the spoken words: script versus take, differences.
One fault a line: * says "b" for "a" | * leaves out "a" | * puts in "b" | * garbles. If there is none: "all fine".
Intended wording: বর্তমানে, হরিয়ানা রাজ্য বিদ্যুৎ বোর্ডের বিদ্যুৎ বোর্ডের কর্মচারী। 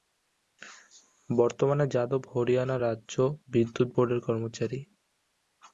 * puts in "যাদব"
* leaves out "বিদ্যুৎ বোর্ডের"